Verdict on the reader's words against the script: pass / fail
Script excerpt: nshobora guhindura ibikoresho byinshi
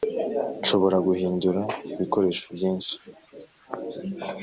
pass